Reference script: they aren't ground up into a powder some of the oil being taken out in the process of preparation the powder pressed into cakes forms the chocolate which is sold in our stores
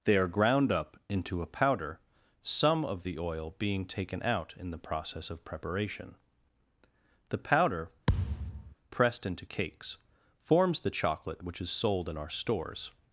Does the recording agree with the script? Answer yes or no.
no